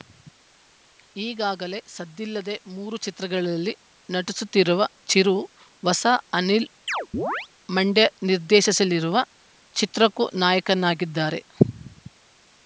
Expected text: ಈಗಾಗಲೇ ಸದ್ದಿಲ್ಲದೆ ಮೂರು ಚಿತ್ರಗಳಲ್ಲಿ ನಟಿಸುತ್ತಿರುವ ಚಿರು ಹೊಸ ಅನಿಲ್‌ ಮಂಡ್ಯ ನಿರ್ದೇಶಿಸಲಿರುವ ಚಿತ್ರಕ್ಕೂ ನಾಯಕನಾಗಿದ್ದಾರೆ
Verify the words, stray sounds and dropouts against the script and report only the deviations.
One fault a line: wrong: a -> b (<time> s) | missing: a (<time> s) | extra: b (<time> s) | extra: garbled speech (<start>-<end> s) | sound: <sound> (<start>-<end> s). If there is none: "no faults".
sound: chirp (6.9-7.5 s)